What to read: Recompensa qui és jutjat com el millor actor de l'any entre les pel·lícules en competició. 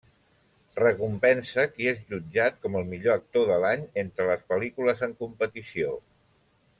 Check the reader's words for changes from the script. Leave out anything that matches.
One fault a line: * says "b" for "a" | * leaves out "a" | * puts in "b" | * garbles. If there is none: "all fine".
all fine